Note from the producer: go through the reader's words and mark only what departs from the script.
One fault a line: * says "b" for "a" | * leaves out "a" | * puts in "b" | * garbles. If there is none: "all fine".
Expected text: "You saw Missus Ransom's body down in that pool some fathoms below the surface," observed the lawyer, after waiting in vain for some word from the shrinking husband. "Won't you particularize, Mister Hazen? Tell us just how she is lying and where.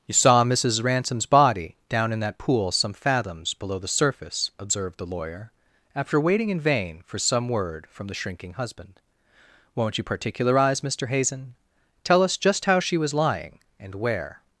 * says "was" for "is"